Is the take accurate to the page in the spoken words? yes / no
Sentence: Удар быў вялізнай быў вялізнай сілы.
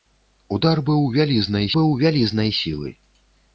yes